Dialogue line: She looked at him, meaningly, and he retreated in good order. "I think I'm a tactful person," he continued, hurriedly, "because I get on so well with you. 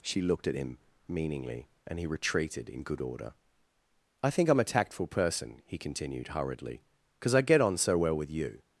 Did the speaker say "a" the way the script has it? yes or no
yes